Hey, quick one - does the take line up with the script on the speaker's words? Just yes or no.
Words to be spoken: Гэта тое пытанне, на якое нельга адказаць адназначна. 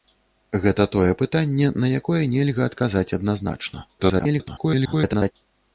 no